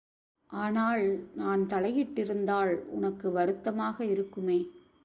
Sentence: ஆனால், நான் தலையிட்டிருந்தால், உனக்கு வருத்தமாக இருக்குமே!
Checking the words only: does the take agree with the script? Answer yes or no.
yes